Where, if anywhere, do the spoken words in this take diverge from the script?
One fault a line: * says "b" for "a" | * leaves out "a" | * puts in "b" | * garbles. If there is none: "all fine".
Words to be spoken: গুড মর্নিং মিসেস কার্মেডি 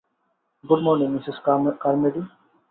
all fine